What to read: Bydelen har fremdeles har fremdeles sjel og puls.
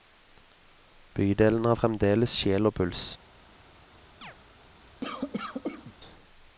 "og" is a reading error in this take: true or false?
false